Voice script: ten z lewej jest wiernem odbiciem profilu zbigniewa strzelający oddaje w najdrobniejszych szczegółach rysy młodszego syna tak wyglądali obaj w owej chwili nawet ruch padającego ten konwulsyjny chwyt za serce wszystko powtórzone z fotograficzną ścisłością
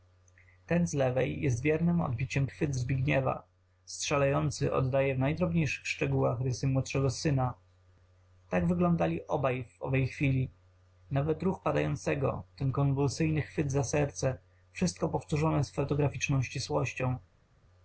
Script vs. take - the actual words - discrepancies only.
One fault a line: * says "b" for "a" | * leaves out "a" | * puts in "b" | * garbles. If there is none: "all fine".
* says "chwyt" for "profilu"